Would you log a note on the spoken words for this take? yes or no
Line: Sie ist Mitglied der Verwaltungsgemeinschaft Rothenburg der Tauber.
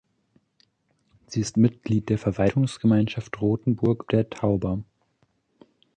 no